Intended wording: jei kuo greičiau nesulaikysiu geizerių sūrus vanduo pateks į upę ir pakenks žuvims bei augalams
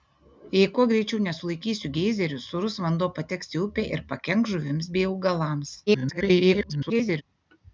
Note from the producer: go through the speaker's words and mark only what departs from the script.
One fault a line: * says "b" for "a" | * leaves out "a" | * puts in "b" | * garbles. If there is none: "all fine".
* garbles